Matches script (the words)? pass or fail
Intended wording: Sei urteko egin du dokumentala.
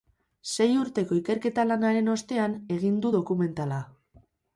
fail